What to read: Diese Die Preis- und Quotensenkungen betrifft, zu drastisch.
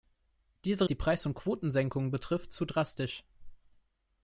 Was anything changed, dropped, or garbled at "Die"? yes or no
no